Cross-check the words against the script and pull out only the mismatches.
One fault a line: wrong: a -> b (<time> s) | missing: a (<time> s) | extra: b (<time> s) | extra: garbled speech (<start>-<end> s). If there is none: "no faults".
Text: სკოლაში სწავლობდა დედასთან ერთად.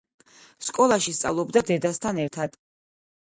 no faults